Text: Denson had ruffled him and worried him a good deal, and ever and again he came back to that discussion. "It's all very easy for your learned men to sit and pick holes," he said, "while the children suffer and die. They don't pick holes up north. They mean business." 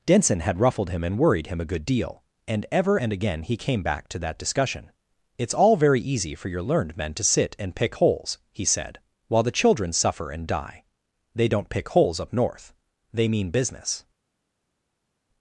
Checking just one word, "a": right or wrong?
right